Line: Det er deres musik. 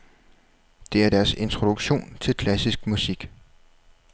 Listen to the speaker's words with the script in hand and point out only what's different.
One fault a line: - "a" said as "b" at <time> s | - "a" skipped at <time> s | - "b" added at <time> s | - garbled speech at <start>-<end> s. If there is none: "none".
- "introduktion til klassisk" added at 1.3 s